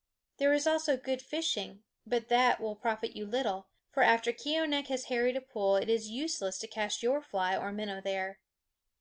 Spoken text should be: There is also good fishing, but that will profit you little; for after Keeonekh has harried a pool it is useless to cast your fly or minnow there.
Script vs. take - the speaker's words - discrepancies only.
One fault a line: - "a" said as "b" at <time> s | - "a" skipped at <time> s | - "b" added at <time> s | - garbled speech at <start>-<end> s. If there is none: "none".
none